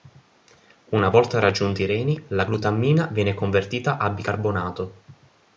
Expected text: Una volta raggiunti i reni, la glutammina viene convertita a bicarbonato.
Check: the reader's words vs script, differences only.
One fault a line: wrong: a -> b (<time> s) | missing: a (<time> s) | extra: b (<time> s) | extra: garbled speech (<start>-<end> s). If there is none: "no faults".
no faults